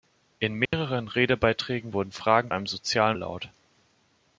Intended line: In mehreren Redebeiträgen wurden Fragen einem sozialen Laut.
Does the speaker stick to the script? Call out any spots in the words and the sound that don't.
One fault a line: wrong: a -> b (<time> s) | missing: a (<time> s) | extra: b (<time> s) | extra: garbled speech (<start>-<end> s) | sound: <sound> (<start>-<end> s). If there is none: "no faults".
sound: dropout (0.7-0.7 s)